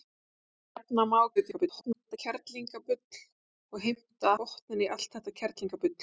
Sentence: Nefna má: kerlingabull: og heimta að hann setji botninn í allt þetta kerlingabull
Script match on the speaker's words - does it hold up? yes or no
no